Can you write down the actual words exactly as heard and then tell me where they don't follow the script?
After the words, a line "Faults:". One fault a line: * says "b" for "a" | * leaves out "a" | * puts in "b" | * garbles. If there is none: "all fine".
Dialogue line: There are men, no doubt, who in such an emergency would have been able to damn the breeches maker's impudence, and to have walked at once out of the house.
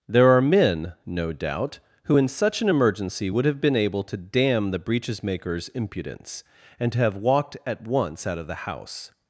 There are men, no doubt, who in such an emergency would have been able to damn the breeches maker's impudence, and to have walked at once out of the house.
Faults:
all fine